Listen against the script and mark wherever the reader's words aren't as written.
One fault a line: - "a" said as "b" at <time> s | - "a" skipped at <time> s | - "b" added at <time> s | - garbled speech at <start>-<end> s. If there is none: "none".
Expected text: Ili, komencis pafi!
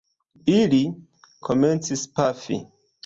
none